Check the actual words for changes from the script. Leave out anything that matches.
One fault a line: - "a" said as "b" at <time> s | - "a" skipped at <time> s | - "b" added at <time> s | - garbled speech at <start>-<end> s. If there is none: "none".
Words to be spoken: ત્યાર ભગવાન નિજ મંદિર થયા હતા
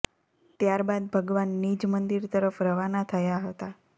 - "બાદ" added at 0.8 s
- "તરફ રવાના" added at 2.3 s